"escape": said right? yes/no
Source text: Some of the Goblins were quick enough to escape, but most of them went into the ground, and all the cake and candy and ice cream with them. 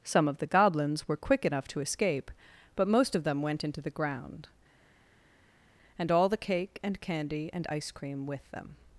yes